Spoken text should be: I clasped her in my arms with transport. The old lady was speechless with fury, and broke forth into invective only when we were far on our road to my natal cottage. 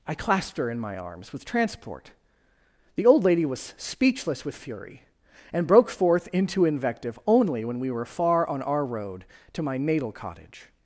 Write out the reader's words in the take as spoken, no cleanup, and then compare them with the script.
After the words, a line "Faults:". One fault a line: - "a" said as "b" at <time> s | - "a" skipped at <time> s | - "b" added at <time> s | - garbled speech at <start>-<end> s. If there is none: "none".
I clasped her in my arms with transport. The old lady was speechless with fury, and broke forth into invective only when we were far on our road to my natal cottage.
Faults:
none